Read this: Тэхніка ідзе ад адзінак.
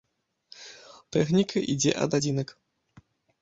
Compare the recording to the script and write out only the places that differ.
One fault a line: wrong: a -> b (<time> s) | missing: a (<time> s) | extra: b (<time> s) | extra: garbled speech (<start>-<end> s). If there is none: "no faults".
no faults